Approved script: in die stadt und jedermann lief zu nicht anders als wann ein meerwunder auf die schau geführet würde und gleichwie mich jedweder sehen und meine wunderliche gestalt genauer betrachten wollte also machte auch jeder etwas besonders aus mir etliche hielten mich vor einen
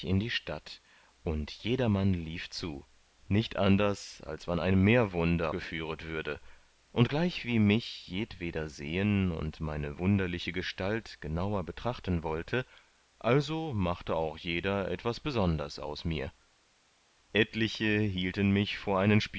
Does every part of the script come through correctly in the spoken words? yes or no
no